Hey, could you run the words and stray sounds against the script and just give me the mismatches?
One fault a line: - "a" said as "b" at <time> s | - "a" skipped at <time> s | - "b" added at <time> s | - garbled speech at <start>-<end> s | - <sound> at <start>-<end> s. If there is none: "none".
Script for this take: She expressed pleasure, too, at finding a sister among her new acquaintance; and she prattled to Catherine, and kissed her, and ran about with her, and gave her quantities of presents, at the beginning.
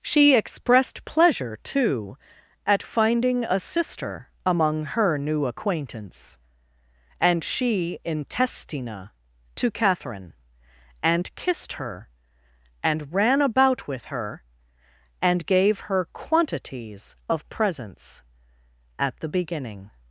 - "prattled" said as "intestina" at 8.0 s